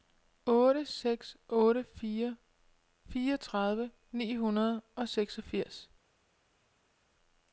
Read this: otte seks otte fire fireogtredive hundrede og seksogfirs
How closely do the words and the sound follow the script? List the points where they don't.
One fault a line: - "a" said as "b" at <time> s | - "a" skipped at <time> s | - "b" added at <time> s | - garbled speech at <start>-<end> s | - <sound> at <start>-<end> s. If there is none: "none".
- "ni" added at 4.1 s